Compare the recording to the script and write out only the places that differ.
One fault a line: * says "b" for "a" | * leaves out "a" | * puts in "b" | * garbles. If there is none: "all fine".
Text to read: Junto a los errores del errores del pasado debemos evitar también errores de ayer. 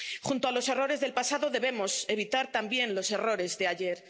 * leaves out "errores del"
* puts in "los"